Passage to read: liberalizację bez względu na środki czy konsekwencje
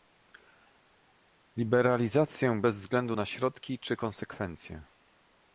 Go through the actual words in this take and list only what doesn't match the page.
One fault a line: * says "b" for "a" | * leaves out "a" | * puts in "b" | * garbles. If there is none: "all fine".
all fine